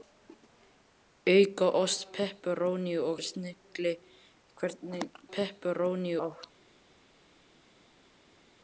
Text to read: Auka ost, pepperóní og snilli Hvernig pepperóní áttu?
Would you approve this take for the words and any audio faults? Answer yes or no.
yes